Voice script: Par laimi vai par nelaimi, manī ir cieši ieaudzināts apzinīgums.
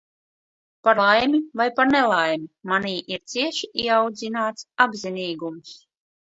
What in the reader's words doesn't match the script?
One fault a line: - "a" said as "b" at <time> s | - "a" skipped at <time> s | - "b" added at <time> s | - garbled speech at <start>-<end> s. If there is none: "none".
none